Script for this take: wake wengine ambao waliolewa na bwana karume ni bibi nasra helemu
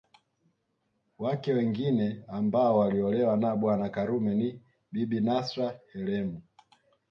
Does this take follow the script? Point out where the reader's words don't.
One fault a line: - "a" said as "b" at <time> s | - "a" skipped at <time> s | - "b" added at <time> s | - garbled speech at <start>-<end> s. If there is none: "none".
none